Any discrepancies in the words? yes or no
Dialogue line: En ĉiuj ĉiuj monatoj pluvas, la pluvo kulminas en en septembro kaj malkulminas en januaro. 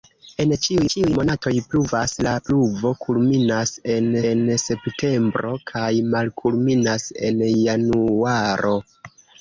no